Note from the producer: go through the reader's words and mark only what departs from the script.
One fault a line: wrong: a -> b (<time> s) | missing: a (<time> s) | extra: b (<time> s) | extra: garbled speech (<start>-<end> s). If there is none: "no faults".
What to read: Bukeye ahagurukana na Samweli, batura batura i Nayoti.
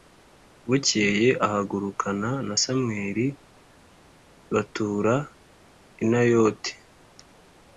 missing: batura (5.1 s)